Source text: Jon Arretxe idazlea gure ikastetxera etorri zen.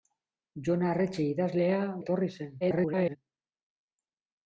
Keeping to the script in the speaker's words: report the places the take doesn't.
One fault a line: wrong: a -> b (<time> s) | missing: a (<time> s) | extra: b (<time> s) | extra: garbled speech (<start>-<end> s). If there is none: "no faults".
missing: gure ikastetxera (1.8 s)
extra: garbled speech (2.6-3.2 s)